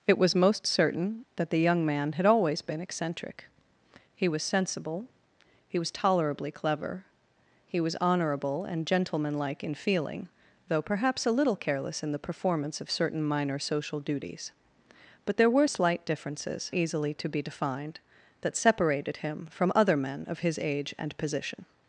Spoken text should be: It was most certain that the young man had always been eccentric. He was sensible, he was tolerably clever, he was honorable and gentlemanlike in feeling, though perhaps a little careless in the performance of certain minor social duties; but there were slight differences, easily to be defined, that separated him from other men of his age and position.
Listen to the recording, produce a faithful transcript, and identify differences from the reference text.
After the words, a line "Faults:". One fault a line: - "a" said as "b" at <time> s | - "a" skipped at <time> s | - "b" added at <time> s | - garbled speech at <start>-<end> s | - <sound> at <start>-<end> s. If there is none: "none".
It was most certain that the young man had always been eccentric. He was sensible, he was tolerably clever, he was honorable and gentlemanlike in feeling, though perhaps a little careless in the performance of certain minor social duties; but there were slight differences, easily to be defined, that separated him from other men of his age and position.
Faults:
none